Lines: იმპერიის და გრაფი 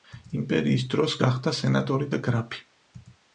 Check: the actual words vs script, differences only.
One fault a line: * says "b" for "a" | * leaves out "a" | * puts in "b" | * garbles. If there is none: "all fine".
* puts in "დროს გახდა სენატორი"